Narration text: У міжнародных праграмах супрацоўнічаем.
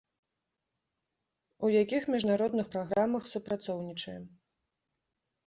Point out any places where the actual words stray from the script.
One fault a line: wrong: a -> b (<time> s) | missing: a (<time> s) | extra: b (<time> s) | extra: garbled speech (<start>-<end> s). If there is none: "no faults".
extra: якіх (1.8 s)